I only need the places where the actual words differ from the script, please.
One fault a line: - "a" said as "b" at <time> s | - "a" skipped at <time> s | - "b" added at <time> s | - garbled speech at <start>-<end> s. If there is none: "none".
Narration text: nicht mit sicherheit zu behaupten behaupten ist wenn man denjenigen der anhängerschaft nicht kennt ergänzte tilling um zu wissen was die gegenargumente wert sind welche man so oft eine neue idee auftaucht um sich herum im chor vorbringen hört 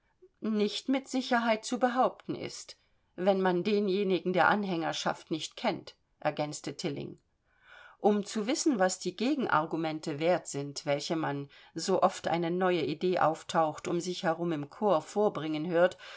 - "behaupten" skipped at 2.3 s